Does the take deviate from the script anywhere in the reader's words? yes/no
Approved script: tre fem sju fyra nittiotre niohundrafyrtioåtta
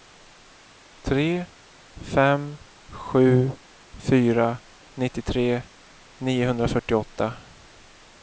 no